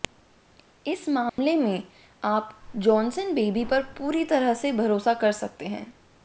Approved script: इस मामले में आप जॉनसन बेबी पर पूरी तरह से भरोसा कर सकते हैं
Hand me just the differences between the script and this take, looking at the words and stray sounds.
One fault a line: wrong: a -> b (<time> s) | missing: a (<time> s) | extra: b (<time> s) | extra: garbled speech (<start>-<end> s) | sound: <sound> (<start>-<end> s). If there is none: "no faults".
sound: dropout (1.3-1.4 s)